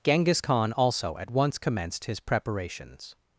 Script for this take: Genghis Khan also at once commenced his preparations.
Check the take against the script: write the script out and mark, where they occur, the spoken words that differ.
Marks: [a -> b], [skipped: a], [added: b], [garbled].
Genghis Khan also at once commenced his preparations.